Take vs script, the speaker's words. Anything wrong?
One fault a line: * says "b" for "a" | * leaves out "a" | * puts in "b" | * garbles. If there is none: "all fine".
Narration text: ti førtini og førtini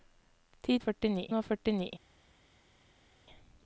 all fine